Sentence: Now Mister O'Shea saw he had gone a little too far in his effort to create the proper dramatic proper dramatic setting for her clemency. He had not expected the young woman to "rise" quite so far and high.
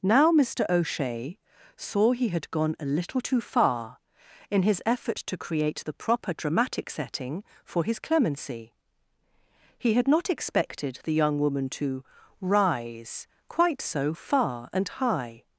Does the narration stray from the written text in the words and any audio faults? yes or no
yes